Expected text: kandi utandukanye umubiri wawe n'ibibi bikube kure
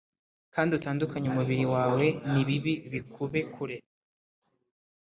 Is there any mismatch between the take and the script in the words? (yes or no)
no